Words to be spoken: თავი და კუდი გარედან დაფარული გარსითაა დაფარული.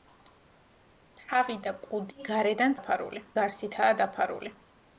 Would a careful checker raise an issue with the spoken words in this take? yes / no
no